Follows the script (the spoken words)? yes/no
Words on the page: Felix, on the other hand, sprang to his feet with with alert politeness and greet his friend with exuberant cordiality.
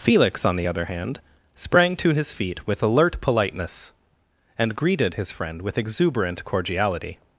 no